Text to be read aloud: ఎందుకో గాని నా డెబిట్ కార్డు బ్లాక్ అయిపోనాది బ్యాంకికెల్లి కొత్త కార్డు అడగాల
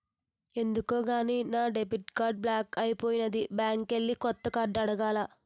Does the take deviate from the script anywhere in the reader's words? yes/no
no